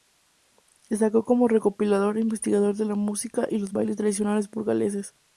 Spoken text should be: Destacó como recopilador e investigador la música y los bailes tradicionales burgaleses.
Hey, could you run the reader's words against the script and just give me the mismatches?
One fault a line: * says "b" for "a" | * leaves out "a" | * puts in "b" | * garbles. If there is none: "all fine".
* puts in "de"